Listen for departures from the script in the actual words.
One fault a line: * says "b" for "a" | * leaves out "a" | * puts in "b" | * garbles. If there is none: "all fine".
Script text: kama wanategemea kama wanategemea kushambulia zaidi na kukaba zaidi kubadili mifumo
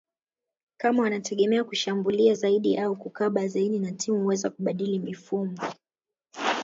* says "kushambulia zaidi au kukaba" for "kama wanategemea kushambulia"
* says "timu huweza" for "kukaba zaidi"